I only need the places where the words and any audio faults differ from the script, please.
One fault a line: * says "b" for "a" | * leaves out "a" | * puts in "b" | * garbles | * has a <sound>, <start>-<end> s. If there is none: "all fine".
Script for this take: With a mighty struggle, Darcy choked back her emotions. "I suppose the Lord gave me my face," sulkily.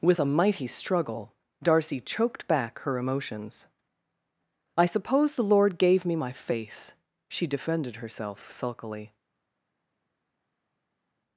* puts in "she defended herself"